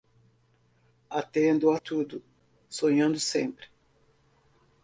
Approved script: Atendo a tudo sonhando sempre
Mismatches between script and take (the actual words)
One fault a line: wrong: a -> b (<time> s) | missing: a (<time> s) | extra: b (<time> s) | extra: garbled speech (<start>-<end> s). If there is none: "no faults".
no faults